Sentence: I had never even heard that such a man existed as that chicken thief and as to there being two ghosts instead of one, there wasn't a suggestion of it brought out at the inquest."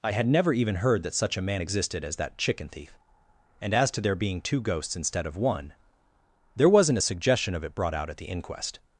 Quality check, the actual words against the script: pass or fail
pass